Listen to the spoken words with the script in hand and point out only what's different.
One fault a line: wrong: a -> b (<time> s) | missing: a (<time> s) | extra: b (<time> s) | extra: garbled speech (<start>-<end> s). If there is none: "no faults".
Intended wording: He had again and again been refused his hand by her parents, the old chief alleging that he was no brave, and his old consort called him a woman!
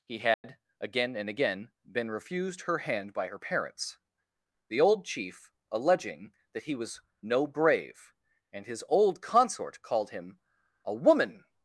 wrong: his -> her (2.6 s)